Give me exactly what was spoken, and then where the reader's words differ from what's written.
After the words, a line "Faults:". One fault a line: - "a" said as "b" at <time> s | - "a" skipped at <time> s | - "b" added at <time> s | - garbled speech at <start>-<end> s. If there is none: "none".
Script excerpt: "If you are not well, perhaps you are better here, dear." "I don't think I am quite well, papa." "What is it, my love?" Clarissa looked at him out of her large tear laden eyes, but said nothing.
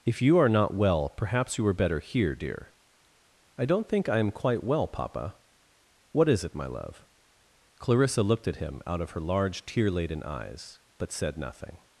"If you are not well, perhaps you were better here, dear." "I don't think I am quite well, papa." "What is it, my love?" Clarissa looked at him out of her large tear laden eyes, but said nothing.
Faults:
- "are" said as "were" at 1.6 s